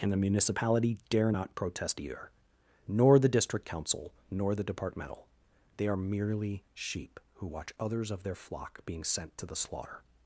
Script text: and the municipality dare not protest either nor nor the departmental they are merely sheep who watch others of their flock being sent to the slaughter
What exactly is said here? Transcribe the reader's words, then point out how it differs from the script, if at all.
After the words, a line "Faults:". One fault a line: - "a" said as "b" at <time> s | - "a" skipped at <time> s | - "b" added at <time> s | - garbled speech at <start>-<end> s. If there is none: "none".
and the municipality dare not protest either nor the district council nor the departmental they are merely sheep who watch others of their flock being sent to the slaughter
Faults:
- "the district council" added at 3.2 s